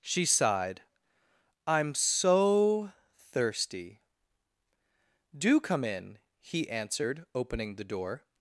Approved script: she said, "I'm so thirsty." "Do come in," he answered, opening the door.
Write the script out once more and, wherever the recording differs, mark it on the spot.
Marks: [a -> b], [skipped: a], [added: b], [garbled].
she [said, -> sighed] "I'm so thirsty." "Do come in," he answered, opening the door.